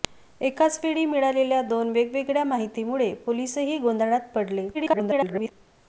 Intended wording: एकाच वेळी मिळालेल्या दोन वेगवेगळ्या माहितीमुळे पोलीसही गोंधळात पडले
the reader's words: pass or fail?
fail